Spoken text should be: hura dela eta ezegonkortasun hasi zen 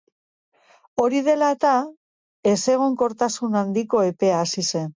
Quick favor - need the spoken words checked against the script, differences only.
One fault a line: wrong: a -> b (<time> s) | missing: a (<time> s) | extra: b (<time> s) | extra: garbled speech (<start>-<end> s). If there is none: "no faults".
wrong: hura -> hori (1.0 s)
extra: handiko epea (3.6 s)